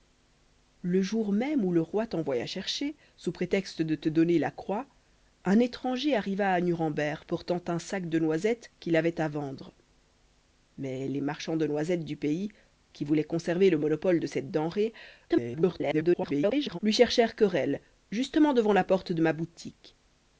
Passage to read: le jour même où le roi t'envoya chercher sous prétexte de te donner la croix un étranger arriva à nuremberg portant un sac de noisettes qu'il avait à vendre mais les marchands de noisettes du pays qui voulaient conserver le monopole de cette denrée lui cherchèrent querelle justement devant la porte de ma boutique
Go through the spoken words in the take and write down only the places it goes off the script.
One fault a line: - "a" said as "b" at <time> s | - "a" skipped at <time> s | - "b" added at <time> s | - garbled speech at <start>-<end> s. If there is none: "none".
- garbled speech at 15.3-16.8 s